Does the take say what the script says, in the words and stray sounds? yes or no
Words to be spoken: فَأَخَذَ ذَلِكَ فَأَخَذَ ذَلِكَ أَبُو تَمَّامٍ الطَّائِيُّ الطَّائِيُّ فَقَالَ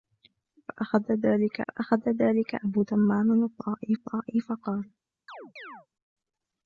no